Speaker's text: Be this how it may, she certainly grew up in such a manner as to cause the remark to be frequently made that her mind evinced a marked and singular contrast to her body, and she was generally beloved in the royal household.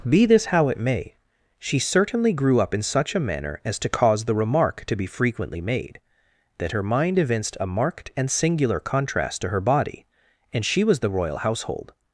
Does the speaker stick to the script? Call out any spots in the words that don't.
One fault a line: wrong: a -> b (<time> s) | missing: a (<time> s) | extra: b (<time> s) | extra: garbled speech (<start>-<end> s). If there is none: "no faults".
missing: generally beloved in (11.0 s)